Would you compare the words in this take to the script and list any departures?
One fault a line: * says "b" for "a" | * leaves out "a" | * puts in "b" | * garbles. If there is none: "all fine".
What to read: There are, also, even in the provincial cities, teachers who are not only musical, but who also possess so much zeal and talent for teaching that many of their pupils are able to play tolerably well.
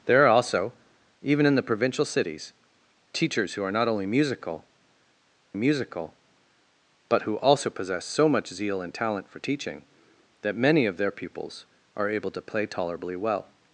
* puts in "musical"